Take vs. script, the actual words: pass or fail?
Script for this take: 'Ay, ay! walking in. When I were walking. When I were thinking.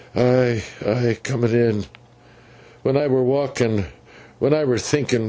fail